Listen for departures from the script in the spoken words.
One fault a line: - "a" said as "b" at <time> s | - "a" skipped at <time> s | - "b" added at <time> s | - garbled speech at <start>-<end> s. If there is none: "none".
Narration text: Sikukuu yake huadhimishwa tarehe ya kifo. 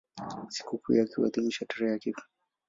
none